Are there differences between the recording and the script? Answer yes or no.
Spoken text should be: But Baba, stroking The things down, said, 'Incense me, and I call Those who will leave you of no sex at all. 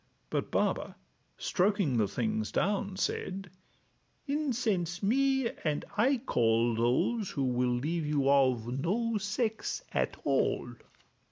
no